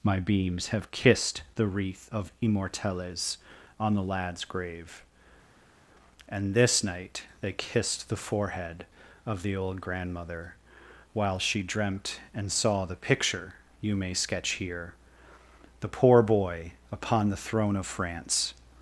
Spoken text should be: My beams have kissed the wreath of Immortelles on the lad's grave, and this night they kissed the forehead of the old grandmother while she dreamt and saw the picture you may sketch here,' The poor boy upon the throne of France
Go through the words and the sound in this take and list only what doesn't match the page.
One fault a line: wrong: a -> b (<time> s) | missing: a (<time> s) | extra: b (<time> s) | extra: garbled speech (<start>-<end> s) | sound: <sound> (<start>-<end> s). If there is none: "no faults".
no faults